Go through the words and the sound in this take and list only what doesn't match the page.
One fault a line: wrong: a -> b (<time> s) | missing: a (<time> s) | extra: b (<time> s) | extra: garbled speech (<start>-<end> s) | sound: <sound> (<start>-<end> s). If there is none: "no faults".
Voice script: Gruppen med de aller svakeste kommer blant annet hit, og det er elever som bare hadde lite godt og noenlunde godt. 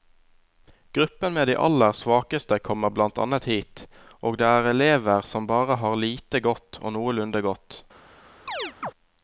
wrong: hadde -> har (5.8 s)
sound: chirp (8.5-8.9 s)